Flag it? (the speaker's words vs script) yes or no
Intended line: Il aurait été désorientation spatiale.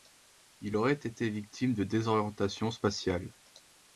yes